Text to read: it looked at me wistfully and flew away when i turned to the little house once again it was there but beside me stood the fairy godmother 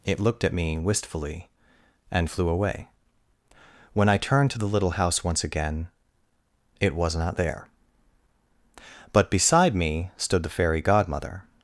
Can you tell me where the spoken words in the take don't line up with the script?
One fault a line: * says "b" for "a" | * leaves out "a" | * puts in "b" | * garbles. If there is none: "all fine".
* puts in "not"